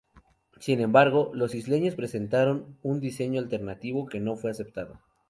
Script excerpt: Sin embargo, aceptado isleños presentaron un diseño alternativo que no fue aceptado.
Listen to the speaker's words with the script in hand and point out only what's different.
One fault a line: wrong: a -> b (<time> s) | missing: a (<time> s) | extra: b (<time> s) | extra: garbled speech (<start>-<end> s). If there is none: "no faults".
wrong: aceptado -> los (1.4 s)